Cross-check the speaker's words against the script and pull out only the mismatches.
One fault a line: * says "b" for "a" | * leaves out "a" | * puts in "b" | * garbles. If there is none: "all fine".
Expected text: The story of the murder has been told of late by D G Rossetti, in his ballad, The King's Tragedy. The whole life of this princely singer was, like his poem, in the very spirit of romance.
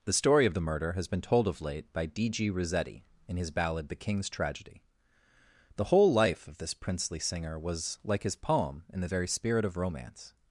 all fine